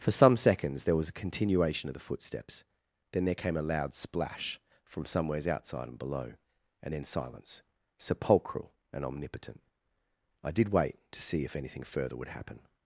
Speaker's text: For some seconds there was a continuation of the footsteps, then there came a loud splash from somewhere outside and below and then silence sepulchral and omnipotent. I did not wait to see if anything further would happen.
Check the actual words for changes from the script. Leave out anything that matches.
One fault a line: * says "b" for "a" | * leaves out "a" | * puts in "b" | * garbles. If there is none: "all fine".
* says "somewheres" for "somewhere"
* leaves out "not"